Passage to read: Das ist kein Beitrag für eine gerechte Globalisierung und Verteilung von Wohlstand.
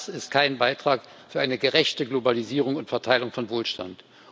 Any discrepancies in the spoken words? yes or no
no